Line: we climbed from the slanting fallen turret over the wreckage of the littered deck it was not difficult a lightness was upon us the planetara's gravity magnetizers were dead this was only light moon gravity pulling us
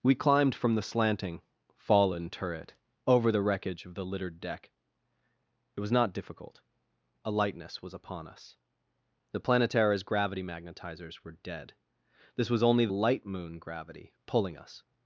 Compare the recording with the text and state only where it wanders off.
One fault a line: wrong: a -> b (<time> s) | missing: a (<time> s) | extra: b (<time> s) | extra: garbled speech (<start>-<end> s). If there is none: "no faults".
no faults